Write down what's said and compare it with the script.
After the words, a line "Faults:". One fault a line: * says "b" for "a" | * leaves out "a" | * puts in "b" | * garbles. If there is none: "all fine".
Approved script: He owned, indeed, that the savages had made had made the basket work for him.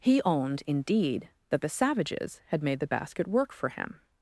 He owned, indeed, that the savages had made the basket work for him.
Faults:
* leaves out "had made"